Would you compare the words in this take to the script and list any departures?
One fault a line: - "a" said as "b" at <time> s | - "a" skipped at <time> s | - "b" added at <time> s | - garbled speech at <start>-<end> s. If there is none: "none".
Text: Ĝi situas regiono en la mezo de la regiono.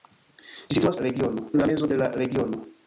none